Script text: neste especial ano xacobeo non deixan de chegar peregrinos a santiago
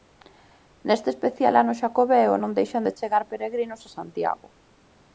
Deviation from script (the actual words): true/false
false